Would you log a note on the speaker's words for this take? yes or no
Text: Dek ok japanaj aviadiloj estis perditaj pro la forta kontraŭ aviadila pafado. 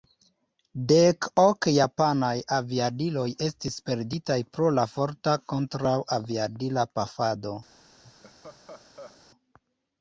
no